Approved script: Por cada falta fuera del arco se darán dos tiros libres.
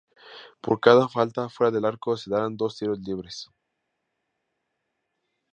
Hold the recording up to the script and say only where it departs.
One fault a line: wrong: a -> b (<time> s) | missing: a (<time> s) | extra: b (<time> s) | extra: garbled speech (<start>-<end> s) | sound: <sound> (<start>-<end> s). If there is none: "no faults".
no faults